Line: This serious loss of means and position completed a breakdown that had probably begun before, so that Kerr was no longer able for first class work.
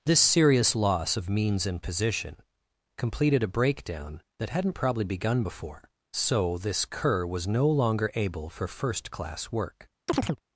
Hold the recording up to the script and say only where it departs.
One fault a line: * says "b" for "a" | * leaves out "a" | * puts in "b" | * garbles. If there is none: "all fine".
* says "hadn't" for "had"
* says "this" for "that"